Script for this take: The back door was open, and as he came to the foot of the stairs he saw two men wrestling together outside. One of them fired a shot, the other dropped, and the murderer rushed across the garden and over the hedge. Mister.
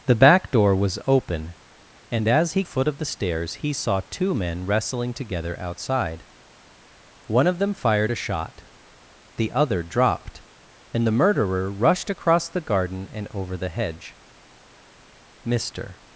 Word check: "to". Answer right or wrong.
wrong